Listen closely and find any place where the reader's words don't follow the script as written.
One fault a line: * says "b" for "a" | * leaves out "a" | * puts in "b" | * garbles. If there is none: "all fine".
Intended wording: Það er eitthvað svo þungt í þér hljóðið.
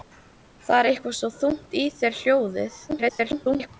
* garbles